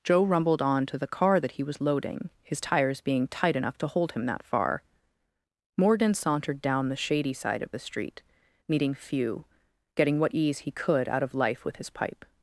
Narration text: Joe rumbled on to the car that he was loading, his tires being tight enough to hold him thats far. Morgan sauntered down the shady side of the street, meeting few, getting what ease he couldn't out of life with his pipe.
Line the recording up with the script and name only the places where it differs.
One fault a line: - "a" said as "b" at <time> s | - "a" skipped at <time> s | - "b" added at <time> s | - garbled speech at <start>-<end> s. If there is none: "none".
- "thats" said as "that" at 4.2 s
- "couldn't" said as "could" at 10.7 s